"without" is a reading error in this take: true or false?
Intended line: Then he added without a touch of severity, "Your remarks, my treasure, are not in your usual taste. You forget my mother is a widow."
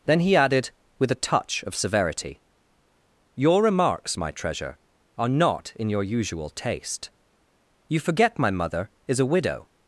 true